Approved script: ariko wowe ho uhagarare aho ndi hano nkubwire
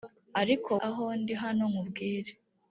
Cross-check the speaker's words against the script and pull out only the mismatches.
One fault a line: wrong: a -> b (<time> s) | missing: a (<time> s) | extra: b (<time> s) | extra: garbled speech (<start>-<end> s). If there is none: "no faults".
missing: wowe ho uhagarare (0.7 s)